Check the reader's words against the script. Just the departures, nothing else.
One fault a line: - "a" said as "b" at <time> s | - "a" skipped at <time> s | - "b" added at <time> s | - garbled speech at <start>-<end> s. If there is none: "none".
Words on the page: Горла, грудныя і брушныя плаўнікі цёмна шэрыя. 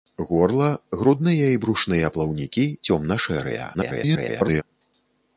- garbled speech at 3.7-4.6 s